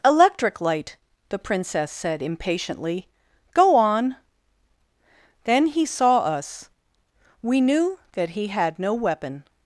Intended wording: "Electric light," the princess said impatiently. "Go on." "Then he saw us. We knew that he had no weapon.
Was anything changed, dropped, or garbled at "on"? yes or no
no